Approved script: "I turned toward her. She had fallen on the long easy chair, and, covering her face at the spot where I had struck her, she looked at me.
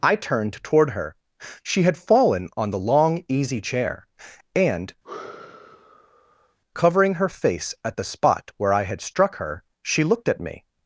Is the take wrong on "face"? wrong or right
right